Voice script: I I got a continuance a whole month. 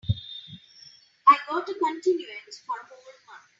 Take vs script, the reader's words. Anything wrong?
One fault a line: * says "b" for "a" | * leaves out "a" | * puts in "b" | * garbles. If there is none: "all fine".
* leaves out "I"
* puts in "for"